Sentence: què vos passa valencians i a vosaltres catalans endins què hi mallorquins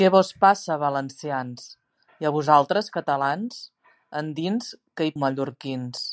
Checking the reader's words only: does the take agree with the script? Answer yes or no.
yes